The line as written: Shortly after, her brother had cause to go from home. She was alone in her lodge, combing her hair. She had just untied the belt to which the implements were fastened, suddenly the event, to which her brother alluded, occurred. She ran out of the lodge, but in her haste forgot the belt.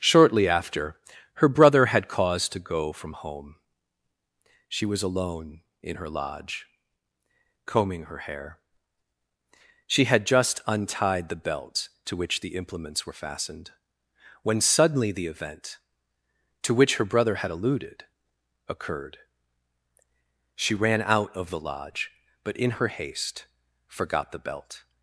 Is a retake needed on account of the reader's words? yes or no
yes